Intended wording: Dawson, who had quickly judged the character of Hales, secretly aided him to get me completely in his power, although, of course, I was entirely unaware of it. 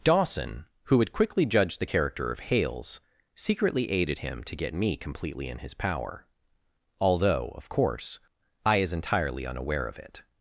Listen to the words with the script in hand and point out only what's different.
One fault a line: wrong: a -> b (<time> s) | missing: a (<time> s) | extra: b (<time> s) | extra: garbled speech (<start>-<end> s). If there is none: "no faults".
wrong: was -> is (8.8 s)